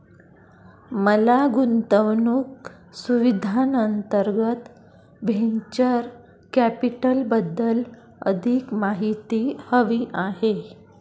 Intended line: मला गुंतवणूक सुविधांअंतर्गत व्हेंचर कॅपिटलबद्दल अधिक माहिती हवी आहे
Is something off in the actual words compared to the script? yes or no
no